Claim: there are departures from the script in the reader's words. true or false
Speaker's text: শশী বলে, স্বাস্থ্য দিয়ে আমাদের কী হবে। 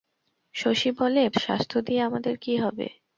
false